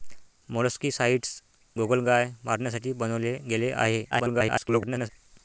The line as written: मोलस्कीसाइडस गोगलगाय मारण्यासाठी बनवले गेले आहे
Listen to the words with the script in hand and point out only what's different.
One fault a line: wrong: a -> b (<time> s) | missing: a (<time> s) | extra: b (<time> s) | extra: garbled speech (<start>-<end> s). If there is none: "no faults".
extra: garbled speech (4.1-5.1 s)